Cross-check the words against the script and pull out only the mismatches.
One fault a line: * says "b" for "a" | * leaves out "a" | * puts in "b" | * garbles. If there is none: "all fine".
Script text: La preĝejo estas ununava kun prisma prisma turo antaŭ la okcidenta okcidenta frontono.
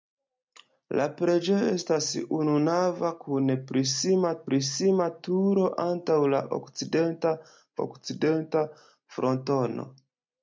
all fine